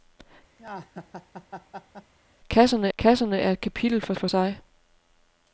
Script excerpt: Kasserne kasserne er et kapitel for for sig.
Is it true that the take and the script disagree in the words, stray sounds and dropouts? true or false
true